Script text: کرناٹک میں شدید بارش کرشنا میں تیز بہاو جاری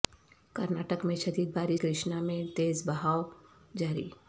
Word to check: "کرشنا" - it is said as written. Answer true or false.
true